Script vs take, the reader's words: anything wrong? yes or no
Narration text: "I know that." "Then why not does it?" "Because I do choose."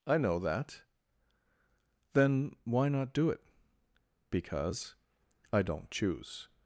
yes